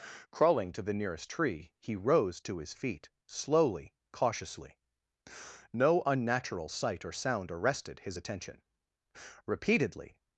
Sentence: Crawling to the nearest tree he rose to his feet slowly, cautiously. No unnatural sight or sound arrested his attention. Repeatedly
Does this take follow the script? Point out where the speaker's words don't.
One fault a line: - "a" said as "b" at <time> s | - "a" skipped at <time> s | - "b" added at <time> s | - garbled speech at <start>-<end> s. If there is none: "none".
none